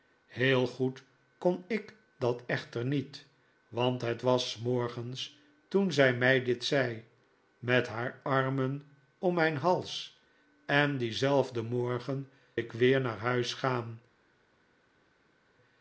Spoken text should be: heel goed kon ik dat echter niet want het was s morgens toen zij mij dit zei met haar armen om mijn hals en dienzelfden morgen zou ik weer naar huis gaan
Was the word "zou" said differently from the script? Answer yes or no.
yes